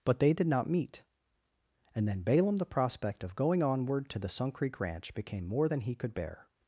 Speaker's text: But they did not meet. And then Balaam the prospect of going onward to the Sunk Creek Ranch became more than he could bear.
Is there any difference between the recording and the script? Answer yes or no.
no